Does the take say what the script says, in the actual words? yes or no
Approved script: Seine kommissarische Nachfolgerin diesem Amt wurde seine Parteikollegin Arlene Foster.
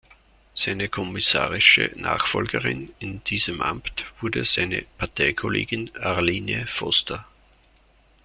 no